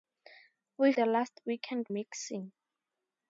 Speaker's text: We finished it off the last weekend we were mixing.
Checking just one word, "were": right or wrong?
wrong